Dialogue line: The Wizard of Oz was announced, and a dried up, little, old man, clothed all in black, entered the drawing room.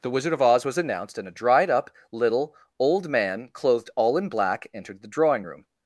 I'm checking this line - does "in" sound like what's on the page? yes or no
yes